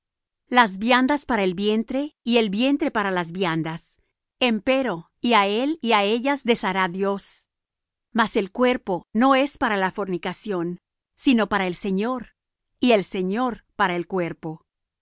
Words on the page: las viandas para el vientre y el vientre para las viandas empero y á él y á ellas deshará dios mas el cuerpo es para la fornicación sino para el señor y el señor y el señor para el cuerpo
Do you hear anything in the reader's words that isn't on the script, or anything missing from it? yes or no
yes